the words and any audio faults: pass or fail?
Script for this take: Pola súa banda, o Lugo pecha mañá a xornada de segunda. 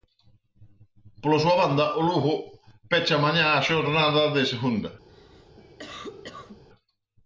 fail